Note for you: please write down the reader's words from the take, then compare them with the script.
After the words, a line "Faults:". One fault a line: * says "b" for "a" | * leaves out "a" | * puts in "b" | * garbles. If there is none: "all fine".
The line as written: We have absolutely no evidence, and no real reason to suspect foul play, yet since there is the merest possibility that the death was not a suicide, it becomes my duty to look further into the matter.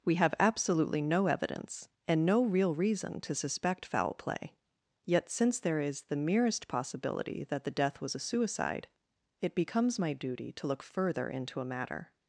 We have absolutely no evidence, and no real reason to suspect foul play, yet since there is the merest possibility that the death was a suicide, it becomes my duty to look further into a matter.
Faults:
* leaves out "not"
* says "a" for "the"